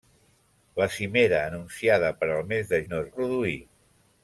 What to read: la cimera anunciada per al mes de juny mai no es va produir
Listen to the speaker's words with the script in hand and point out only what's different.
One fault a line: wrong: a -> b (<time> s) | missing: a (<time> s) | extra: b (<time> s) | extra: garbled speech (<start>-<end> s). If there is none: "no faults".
missing: juny mai (2.8 s)
missing: va (3.1 s)